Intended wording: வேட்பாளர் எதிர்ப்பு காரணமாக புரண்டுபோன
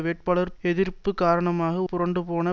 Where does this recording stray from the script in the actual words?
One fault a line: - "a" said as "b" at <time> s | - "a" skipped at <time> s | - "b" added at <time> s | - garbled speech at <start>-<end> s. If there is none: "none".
none